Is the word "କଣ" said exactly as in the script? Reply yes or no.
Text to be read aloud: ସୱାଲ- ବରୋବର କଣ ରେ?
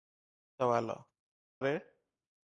no